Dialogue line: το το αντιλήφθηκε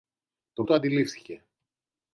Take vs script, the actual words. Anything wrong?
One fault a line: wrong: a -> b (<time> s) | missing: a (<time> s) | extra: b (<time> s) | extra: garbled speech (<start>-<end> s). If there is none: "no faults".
no faults